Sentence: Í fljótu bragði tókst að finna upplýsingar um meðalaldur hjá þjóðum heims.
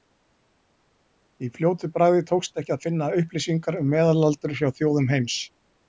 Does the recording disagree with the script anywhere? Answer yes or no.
yes